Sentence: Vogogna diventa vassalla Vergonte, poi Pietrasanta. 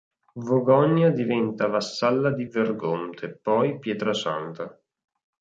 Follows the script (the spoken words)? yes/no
no